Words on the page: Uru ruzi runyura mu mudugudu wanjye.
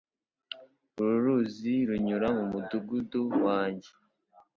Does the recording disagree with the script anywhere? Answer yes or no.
no